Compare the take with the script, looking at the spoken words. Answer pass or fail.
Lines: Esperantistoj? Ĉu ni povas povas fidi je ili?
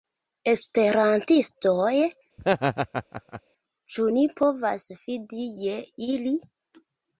fail